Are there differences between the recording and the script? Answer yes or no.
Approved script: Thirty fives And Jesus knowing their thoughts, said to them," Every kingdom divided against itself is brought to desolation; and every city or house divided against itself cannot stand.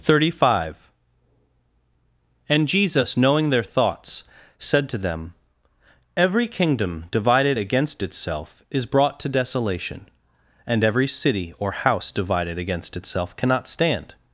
yes